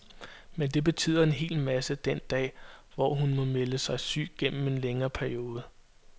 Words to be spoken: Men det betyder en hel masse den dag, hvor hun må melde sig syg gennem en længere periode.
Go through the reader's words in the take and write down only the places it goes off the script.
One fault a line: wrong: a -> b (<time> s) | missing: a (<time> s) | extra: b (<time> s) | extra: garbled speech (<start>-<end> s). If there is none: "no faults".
no faults